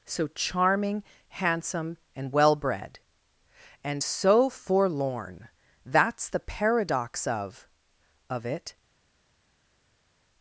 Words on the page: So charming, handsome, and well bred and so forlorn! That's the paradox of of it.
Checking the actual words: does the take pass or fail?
pass